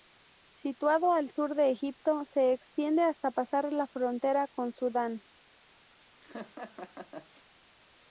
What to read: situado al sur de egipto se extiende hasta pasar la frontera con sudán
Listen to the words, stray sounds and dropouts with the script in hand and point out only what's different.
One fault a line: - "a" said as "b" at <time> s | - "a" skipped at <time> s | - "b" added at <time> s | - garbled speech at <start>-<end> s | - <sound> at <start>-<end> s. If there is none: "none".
- laugh at 6.2-7.5 s